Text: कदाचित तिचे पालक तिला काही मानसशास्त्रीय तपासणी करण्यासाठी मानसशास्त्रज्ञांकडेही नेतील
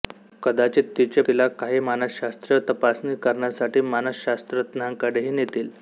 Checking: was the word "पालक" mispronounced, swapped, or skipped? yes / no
yes